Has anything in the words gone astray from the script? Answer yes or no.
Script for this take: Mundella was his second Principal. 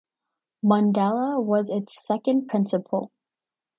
yes